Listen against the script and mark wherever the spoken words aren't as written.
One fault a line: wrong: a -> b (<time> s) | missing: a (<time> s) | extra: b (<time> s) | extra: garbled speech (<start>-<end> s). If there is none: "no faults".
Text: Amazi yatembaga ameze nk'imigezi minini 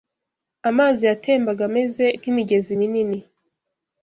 no faults